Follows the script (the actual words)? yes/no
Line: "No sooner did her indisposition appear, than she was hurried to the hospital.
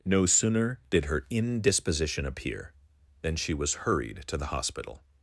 yes